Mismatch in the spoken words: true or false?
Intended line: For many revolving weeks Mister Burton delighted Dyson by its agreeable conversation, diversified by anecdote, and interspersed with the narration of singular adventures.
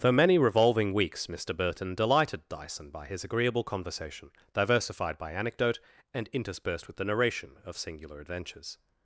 true